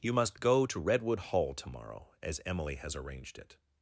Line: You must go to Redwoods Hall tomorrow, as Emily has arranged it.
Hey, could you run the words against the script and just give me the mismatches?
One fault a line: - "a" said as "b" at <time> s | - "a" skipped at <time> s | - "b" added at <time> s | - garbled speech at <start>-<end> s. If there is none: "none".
- "Redwoods" said as "Redwood" at 0.8 s